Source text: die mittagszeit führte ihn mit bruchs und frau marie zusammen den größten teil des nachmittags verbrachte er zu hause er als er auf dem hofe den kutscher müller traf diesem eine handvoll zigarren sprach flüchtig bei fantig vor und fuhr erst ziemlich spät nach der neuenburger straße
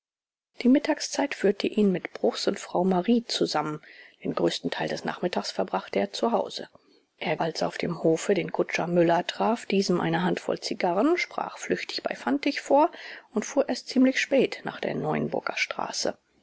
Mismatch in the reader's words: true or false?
false